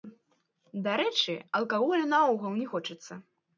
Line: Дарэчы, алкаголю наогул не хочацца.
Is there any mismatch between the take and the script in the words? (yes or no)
no